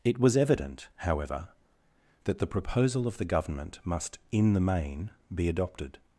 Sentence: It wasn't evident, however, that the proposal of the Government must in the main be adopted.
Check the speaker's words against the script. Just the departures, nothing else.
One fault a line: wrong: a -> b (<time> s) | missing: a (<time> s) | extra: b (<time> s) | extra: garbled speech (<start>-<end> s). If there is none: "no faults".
wrong: wasn't -> was (0.2 s)